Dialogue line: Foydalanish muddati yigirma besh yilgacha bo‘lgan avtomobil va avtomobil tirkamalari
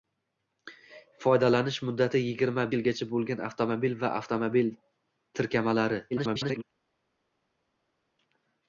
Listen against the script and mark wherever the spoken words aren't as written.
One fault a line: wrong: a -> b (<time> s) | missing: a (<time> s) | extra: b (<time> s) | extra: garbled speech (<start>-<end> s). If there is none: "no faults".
missing: besh (2.6 s)
extra: garbled speech (6.1-6.6 s)